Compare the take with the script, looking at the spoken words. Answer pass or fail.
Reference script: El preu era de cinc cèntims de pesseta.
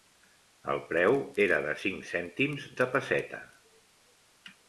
pass